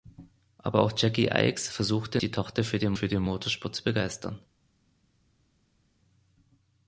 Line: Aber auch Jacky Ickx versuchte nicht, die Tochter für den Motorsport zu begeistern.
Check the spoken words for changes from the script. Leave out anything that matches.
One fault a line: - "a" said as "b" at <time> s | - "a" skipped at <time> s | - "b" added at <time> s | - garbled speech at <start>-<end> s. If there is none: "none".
- "nicht" skipped at 2.2 s
- "für den" added at 2.9 s